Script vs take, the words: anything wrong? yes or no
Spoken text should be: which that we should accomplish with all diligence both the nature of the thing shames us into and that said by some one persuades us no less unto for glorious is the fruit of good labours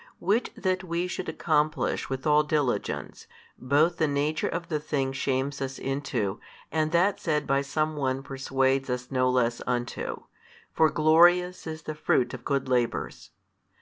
no